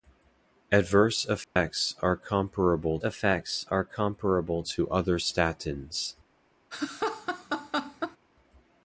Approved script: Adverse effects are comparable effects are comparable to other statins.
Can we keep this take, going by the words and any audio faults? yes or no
no